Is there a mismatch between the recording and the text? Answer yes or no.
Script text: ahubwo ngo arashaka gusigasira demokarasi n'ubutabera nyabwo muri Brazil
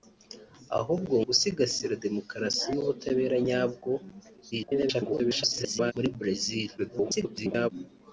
yes